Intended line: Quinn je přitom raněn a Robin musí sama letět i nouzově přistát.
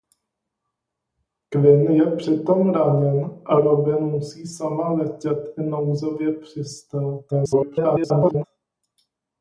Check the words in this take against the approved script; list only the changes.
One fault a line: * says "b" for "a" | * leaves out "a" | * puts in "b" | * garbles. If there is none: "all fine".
* garbles